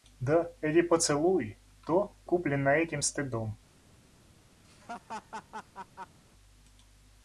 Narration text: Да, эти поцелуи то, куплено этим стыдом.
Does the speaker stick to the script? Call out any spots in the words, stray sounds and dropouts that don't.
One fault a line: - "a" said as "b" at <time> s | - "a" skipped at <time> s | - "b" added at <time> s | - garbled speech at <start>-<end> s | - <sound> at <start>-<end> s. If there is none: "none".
- laugh at 4.6-6.2 s